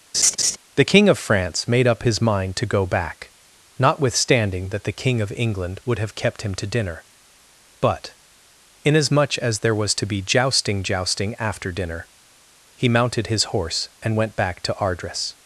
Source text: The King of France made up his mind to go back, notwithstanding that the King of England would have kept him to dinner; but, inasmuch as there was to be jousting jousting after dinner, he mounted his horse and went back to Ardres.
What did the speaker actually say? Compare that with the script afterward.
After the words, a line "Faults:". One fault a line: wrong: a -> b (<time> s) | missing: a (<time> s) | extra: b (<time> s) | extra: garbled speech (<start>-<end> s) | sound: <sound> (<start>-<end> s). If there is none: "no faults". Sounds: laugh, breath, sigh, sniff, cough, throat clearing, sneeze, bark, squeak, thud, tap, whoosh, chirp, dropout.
The King of France made up his mind to go back, notwithstanding that the King of England would have kept him to dinner; but, inasmuch as there was to be jousting jousting after dinner, he mounted his horse and went back to Ardres.
Faults:
sound: laugh (0.1-0.6 s)